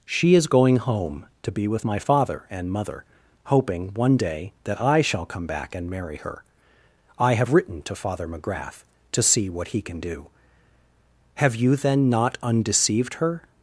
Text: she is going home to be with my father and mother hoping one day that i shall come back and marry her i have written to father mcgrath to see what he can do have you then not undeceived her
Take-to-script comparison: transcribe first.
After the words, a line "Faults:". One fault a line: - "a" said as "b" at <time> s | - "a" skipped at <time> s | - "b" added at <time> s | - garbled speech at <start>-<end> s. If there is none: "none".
she is going home to be with my father and mother hoping one day that i shall come back and marry her i have written to father mcgrath to see what he can do have you then not undeceived her
Faults:
none